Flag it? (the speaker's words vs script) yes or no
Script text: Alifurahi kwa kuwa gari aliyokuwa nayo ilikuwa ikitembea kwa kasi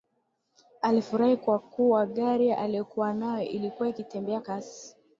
yes